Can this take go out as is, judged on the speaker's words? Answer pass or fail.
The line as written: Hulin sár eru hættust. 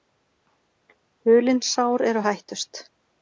pass